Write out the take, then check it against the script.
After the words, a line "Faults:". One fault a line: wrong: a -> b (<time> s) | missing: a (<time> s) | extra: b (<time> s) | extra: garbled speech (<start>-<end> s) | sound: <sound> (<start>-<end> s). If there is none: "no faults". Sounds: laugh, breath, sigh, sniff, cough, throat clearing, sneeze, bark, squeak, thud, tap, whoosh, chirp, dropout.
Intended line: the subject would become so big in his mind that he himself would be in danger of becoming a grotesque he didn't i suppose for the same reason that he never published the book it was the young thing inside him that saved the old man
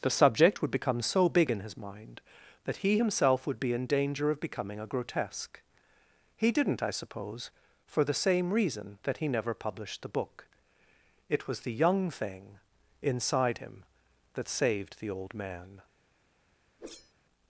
the subject would become so big in his mind that he himself would be in danger of becoming a grotesque he didn't i suppose for the same reason that he never published the book it was the young thing inside him that saved the old man
Faults:
sound: whoosh (16.8-17.1 s)